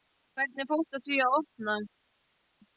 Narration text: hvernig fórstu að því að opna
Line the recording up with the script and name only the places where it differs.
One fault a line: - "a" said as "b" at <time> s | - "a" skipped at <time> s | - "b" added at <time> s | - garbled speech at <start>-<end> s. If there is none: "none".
none